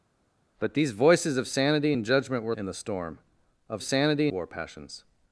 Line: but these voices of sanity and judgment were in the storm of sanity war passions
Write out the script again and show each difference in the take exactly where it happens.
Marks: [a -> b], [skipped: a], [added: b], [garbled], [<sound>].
but these voices of sanity and judgment were in the storm of sanity war passions